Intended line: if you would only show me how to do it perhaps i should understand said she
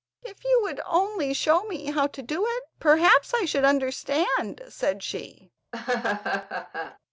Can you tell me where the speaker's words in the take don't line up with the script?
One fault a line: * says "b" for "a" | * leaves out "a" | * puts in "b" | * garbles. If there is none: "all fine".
all fine